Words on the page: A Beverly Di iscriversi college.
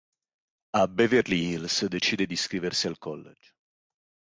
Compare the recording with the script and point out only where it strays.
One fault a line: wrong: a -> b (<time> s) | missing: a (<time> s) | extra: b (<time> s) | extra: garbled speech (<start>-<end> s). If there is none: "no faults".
extra: Hills decide (1.5 s)
extra: al (2.9 s)